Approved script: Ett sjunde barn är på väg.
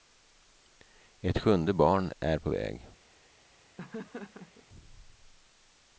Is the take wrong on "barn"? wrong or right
right